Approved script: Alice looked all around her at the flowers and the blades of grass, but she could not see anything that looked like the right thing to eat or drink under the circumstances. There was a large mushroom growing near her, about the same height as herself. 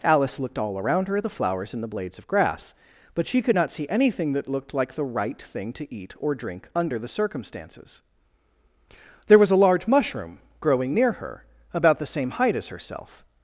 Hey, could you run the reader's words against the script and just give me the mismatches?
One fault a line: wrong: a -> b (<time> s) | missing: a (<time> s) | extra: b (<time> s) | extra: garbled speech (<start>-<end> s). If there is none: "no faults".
no faults